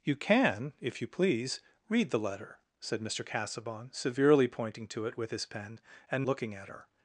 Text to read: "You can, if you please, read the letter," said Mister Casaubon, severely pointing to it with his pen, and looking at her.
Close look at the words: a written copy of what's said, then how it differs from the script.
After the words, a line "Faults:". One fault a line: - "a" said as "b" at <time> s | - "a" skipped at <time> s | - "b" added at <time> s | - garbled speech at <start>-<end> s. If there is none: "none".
"You can, if you please, read the letter," said Mister Casaubon, severely pointing to it with his pen, and looking at her.
Faults:
none